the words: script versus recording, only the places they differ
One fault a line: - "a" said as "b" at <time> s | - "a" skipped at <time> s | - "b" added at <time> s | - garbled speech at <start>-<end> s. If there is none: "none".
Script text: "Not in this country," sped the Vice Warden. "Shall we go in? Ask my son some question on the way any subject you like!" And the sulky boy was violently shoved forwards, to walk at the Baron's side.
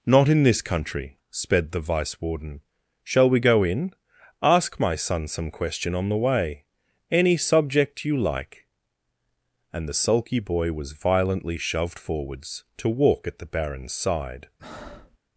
none